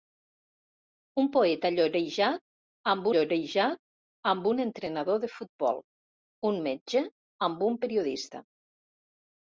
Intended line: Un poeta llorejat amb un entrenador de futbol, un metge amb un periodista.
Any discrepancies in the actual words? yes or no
yes